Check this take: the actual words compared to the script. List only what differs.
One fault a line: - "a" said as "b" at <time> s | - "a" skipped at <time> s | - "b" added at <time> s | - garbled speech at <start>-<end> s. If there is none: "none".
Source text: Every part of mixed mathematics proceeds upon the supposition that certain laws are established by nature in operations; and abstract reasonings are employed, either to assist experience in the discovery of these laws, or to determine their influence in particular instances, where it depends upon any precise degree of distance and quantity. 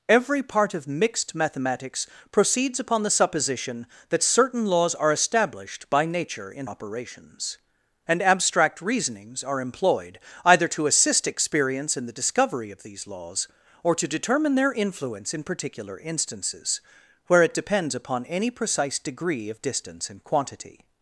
none